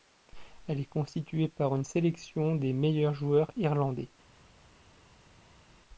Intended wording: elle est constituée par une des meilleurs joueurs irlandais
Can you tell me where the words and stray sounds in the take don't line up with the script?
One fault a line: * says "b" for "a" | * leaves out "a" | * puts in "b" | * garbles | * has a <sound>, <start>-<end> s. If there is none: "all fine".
* puts in "sélection"